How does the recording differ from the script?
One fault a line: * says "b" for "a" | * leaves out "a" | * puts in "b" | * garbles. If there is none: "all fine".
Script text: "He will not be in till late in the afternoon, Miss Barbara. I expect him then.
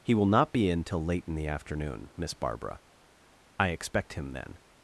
all fine